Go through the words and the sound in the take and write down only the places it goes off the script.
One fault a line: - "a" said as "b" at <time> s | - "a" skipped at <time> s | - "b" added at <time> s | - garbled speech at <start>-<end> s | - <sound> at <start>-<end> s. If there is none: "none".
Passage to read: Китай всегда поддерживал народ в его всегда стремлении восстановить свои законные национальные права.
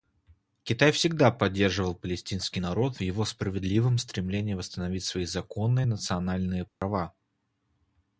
- "палестинский" added at 1.9 s
- "всегда" said as "справедливом" at 3.2 s
- dropout at 6.7-6.8 s